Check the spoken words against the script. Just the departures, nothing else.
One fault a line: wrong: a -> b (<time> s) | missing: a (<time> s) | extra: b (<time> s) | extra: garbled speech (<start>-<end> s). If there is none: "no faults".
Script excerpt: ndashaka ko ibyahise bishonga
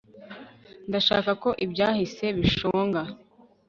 no faults